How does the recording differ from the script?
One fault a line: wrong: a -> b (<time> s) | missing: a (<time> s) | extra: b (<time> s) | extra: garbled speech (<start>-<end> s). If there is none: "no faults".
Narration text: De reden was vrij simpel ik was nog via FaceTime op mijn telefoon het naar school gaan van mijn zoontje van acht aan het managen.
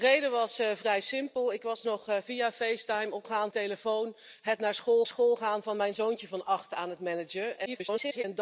wrong: mijn -> gaan (3.2 s)
extra: school (5.1 s)
extra: garbled speech (7.7-8.2 s)